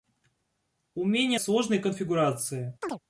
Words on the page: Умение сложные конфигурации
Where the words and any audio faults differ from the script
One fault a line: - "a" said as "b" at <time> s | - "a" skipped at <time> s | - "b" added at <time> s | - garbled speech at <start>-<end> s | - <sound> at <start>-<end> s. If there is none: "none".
- chirp at 2.8-3.0 s